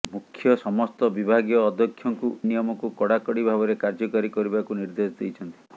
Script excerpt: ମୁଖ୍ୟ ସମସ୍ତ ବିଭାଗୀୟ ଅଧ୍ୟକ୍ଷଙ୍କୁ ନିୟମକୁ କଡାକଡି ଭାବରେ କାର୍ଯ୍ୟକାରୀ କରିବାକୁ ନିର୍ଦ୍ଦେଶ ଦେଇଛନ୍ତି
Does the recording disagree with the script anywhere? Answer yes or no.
no